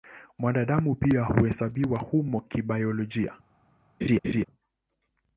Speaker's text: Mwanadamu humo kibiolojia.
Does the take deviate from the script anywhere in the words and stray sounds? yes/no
yes